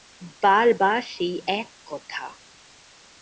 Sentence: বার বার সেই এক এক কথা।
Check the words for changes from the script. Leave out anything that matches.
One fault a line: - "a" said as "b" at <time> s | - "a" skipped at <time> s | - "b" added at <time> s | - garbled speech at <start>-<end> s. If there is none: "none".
- "এক" skipped at 1.7 s